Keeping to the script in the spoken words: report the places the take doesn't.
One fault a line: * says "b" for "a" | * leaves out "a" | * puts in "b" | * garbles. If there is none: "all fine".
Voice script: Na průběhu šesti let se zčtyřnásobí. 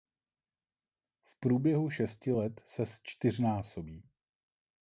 * says "V" for "Na"